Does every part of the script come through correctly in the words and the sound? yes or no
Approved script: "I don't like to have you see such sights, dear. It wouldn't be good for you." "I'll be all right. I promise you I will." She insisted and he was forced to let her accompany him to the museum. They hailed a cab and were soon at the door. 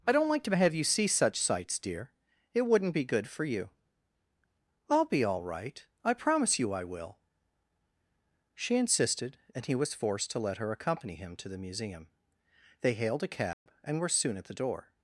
no